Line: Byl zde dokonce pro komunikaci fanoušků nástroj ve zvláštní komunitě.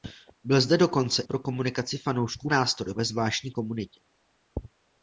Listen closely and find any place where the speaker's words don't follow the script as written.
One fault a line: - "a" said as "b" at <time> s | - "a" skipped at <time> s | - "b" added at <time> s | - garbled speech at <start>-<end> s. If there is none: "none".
none